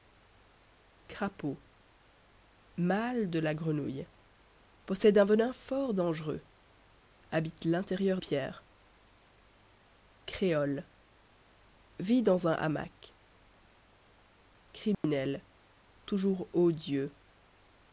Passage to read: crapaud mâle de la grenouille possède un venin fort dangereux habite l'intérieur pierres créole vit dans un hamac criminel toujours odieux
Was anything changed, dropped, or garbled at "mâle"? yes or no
no